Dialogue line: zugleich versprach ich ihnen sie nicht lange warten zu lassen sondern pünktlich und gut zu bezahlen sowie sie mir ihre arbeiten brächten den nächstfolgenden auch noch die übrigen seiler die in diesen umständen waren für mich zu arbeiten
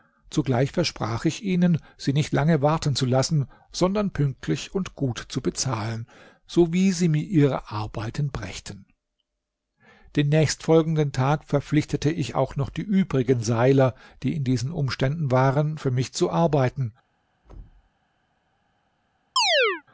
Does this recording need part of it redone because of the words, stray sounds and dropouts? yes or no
yes